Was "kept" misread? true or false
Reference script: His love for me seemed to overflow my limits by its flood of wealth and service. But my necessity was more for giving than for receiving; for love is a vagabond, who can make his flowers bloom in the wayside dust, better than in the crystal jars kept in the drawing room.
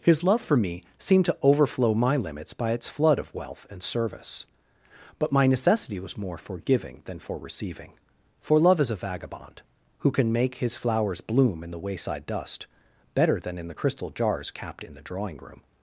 true